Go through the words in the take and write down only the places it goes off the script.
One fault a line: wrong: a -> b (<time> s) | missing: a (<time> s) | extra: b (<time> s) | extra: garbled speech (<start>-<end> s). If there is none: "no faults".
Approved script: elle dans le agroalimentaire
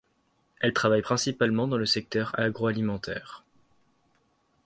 extra: travaille principalement (0.7 s)
extra: secteur (1.8 s)